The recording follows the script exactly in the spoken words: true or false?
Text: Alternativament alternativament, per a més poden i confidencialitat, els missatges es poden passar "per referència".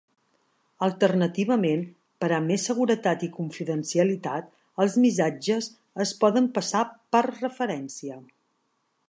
false